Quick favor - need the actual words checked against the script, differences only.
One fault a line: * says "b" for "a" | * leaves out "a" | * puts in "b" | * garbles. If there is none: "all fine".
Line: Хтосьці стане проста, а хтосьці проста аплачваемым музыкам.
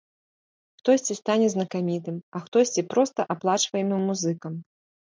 * says "знакамітым" for "проста"